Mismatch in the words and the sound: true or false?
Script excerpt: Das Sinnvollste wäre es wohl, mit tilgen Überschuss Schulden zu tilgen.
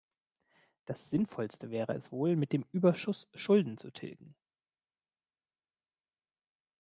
true